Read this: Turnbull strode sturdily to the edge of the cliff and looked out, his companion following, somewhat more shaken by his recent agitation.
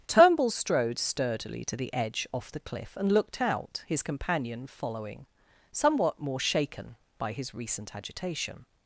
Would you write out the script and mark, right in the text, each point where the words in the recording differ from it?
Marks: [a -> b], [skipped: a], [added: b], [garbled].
Turnbull strode sturdily to the edge [of -> off] the cliff and looked out, his companion following, somewhat more shaken by his recent agitation.